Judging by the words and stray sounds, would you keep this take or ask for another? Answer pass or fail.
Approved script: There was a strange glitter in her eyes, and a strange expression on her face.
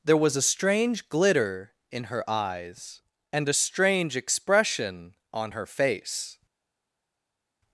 pass